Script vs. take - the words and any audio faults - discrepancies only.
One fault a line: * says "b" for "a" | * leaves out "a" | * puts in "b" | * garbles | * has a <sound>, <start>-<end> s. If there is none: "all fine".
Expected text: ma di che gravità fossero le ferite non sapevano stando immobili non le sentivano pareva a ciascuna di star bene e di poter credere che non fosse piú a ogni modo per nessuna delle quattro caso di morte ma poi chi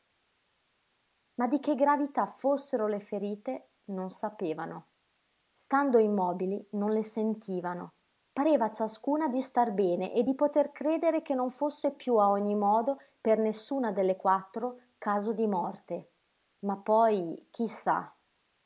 all fine